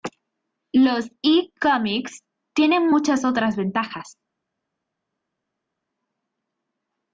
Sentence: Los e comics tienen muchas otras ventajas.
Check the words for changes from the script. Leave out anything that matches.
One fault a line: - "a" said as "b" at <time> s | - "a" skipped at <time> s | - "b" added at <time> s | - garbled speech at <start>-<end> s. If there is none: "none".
none